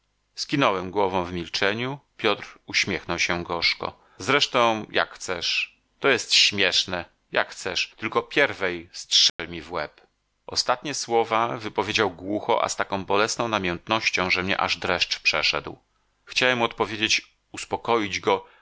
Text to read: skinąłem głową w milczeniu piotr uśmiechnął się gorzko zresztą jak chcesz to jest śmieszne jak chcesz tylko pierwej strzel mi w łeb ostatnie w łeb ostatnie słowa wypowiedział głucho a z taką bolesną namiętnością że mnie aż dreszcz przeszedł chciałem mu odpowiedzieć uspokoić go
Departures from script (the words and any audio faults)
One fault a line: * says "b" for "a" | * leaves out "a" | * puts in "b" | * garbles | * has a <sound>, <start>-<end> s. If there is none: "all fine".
* has a dropout, 9.3-9.4 s
* leaves out "w łeb ostatnie"